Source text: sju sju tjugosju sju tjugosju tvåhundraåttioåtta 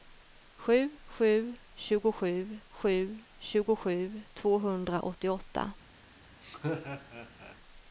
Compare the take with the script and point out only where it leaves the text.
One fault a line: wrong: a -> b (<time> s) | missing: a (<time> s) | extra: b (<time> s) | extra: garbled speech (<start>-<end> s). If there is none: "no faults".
no faults